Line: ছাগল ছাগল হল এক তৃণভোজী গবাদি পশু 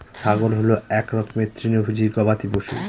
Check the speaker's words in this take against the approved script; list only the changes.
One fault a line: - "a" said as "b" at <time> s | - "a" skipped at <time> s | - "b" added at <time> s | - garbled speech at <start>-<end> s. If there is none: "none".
- "ছাগল" skipped at 0.5 s
- "রকমের" added at 1.1 s